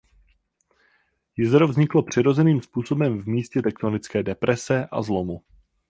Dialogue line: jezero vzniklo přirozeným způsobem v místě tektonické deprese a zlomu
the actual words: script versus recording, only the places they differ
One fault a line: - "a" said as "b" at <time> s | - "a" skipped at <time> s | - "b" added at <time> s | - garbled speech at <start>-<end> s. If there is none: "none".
none